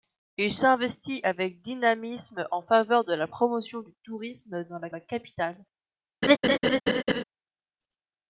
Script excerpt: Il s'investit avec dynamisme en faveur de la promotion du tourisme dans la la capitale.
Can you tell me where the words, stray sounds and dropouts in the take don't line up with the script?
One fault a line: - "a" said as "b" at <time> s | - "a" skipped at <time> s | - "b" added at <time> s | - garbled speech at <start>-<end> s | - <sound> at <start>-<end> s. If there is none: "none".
- laugh at 6.2-7.2 s